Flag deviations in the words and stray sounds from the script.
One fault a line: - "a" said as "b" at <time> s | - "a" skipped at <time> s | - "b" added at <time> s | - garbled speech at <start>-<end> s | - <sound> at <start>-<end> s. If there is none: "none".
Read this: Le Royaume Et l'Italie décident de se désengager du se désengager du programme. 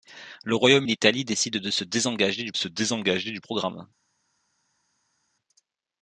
none